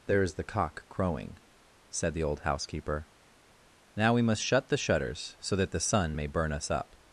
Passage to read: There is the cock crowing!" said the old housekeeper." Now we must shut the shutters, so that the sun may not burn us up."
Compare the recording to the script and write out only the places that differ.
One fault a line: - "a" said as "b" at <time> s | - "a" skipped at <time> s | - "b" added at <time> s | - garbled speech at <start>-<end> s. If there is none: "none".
- "not" skipped at 6.3 s